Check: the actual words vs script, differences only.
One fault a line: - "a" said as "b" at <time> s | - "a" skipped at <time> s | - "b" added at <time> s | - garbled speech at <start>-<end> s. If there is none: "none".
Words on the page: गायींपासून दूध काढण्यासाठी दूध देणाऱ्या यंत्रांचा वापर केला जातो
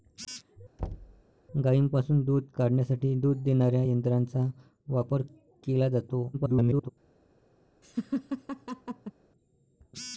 - garbled speech at 6.3-6.9 s